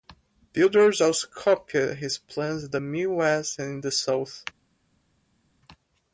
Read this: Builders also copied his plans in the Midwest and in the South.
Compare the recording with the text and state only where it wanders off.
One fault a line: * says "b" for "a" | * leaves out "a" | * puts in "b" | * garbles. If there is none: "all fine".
all fine